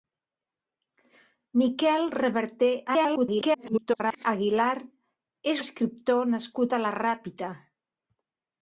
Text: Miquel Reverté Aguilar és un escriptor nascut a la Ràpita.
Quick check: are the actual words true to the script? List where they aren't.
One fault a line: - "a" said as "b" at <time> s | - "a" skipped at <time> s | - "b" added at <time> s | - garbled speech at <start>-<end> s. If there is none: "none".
- garbled speech at 2.9-4.3 s
- "un" skipped at 5.6 s